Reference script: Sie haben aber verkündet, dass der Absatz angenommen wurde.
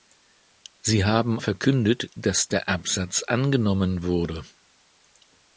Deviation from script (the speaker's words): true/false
true